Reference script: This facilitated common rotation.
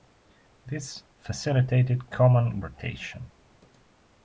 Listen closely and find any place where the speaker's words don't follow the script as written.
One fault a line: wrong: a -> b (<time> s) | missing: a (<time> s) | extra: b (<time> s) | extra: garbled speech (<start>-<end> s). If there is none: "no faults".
no faults